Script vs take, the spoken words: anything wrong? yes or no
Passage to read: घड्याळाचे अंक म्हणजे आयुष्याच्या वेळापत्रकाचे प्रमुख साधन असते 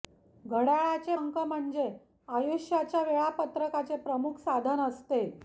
no